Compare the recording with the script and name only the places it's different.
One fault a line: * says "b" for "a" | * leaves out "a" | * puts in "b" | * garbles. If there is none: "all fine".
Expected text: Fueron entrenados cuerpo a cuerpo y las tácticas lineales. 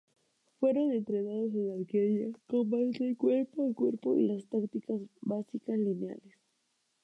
* puts in "en arquería combate"
* puts in "básicas"